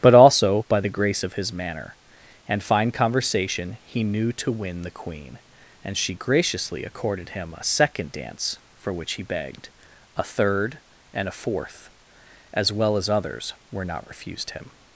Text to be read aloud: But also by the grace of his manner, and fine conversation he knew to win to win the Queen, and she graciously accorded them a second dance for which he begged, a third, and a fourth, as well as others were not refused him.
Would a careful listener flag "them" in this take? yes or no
yes